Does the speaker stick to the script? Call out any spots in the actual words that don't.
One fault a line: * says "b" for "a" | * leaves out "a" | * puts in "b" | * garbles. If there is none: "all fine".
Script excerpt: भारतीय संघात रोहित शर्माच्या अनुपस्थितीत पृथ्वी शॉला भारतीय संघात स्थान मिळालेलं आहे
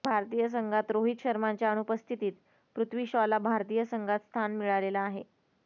all fine